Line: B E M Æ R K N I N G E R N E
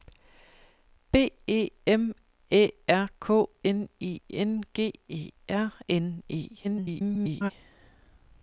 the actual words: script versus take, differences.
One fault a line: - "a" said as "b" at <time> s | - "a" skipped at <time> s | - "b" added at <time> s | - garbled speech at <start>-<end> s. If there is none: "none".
- garbled speech at 6.6-7.5 s